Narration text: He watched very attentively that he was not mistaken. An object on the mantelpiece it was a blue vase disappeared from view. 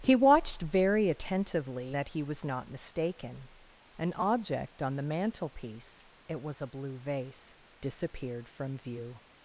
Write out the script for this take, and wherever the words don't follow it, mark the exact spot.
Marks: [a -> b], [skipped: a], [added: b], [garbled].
He watched very attentively that he was not mistaken. An object on the mantelpiece it was a blue vase disappeared from view.